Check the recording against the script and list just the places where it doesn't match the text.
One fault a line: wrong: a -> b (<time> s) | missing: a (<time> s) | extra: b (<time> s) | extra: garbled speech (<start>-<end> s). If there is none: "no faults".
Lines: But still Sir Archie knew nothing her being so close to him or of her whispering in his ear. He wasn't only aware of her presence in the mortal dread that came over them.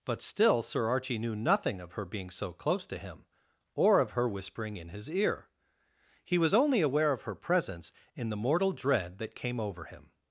extra: of (1.8 s)
wrong: wasn't -> was (6.4 s)
wrong: them -> him (9.8 s)